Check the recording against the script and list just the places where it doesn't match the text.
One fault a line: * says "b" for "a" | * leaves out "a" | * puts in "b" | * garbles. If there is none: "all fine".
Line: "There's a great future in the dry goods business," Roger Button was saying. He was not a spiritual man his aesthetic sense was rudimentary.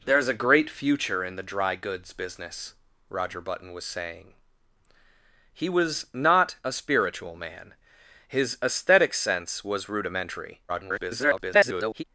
* garbles